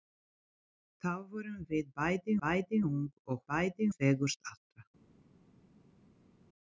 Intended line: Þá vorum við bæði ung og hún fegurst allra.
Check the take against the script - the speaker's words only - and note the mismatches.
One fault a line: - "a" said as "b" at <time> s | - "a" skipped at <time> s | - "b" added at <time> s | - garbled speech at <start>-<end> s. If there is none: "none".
- "bæði" added at 2.4 s
- "hún" said as "bæði" at 3.5 s